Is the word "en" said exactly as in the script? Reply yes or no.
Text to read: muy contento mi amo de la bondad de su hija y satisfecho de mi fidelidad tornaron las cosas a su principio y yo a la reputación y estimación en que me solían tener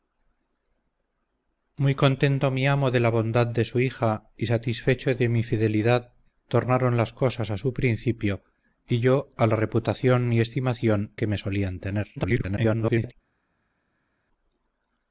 no